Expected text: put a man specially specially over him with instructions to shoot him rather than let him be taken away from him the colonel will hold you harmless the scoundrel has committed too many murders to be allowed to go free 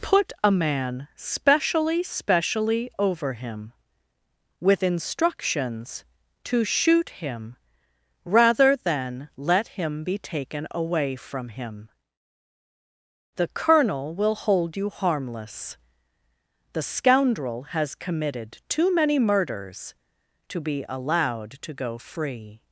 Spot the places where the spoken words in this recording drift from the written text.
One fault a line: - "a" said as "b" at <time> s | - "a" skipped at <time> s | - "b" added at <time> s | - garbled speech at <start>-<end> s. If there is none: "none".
none